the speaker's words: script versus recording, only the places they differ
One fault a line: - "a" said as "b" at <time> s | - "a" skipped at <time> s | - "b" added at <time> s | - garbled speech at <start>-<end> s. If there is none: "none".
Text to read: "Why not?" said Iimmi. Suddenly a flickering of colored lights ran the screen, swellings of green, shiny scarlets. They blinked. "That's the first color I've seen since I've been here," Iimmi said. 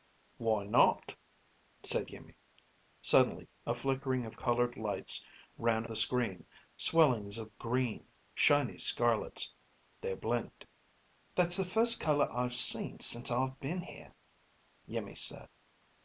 none